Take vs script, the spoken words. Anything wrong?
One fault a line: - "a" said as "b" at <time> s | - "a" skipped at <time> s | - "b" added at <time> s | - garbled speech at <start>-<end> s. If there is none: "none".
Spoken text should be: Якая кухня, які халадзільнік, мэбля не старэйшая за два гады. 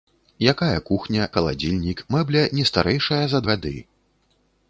- "які" skipped at 1.3 s
- "два" skipped at 3.4 s